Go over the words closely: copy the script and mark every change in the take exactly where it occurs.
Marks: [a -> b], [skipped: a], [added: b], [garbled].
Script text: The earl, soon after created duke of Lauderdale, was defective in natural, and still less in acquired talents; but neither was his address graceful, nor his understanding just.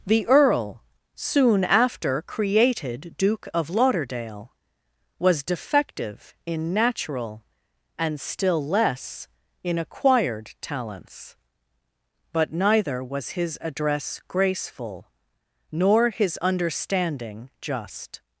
The earl, soon after created duke of Lauderdale, was defective in natural, and still less in acquired talents; but neither was his address graceful, nor his understanding just.